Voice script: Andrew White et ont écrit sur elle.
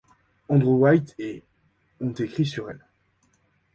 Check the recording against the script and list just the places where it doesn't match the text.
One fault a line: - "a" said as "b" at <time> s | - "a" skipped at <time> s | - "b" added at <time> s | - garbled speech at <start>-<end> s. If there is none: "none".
none